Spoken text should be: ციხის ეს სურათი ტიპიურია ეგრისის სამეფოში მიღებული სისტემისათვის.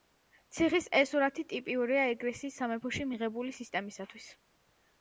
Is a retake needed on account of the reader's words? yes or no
no